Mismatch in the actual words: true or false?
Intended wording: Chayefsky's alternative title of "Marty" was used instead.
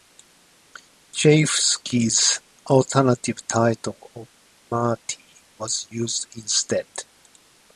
false